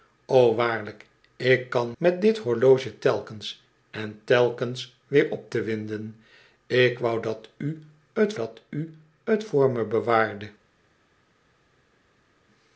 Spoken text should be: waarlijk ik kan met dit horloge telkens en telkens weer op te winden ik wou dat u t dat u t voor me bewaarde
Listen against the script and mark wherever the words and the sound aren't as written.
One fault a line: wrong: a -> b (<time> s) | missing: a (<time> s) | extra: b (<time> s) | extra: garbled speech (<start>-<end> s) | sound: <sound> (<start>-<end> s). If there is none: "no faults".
no faults